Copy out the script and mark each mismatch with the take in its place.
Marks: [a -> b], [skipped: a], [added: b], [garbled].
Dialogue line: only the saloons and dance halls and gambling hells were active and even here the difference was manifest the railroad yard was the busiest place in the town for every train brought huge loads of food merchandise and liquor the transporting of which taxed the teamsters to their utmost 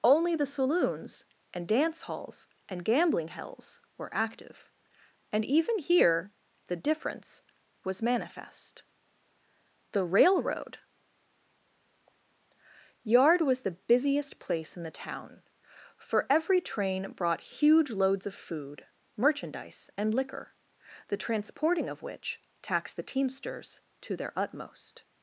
only the saloons and dance halls and gambling hells were active and even here the difference was manifest the railroad yard was the busiest place in the town for every train brought huge loads of food merchandise and liquor the transporting of which taxed the teamsters to their utmost